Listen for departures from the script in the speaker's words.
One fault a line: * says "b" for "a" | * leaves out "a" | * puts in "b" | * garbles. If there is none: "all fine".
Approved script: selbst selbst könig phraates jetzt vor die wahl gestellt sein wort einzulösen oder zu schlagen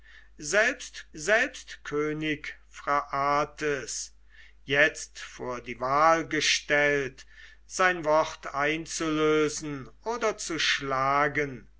all fine